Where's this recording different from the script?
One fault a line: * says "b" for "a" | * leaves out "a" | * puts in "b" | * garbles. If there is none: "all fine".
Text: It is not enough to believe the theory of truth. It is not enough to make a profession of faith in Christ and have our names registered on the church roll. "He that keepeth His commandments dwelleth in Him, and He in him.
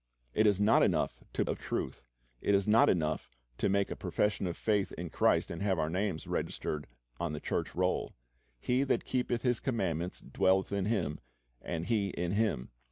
* leaves out "believe the theory"